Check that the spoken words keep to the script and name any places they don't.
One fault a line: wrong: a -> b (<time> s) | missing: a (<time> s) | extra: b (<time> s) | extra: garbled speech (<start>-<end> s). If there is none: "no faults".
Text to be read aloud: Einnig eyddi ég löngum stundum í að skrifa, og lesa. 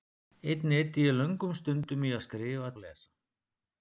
no faults